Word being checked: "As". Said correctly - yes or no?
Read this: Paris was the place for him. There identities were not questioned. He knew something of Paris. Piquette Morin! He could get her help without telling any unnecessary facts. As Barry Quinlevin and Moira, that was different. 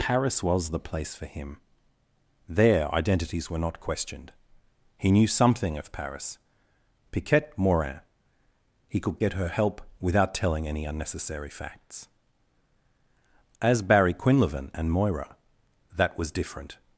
yes